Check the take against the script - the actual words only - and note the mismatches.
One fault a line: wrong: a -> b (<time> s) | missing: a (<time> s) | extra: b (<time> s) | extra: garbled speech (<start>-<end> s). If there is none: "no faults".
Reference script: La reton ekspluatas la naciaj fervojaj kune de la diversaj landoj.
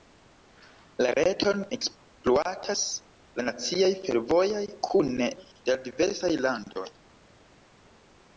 no faults